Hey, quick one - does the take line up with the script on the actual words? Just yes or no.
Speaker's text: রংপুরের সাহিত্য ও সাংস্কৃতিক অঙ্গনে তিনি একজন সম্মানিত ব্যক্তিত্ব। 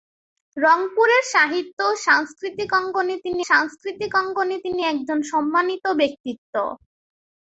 no